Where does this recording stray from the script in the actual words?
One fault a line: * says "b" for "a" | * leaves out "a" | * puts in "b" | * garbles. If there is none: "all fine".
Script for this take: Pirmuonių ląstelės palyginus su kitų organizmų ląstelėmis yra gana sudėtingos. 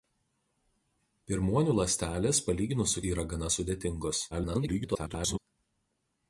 * leaves out "kitų organizmų ląstelėmis"
* garbles